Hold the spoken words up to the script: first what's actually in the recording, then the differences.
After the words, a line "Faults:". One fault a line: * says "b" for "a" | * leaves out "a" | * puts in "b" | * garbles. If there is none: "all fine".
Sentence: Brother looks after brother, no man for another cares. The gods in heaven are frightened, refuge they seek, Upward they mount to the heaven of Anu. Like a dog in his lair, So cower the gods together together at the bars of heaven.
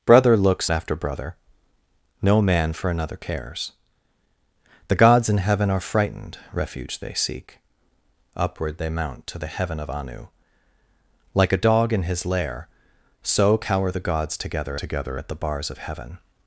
Brother looks after brother, no man for another cares. The gods in heaven are frightened, refuge they seek, Upward they mount to the heaven of Anu. Like a dog in his lair, So cower the gods together together at the bars of heaven.
Faults:
all fine